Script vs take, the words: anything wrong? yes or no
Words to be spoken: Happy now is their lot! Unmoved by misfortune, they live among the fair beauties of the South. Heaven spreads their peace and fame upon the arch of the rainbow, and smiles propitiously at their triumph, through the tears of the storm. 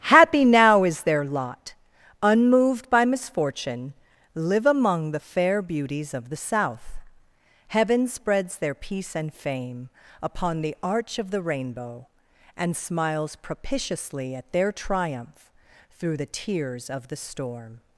yes